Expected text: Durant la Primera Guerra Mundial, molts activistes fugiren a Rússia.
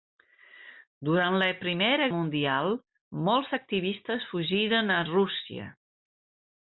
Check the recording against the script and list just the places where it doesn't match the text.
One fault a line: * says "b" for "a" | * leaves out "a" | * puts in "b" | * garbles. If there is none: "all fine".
* leaves out "Guerra"